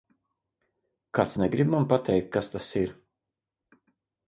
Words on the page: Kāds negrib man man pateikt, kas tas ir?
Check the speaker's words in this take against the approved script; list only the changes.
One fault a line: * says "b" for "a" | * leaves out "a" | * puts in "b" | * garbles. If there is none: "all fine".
* leaves out "man"